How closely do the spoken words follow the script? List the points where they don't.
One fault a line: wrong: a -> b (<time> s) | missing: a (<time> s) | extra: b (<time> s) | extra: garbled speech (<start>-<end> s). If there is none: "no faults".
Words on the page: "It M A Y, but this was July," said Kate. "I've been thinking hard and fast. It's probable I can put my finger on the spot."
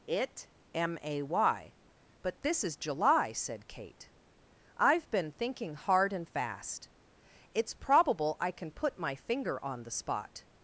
wrong: was -> is (2.6 s)